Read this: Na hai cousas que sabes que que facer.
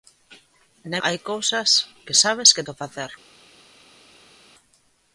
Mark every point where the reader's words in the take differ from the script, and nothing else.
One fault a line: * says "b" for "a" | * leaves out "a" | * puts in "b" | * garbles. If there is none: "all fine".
all fine